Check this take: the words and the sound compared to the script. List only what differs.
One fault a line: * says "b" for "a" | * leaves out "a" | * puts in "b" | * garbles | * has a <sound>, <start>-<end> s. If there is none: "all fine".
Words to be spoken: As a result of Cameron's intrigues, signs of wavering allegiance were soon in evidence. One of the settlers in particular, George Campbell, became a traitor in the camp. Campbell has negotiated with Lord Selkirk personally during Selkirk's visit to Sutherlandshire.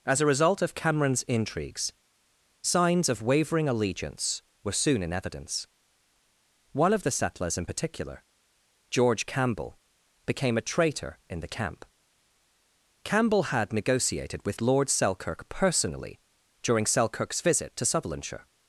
* says "had" for "has"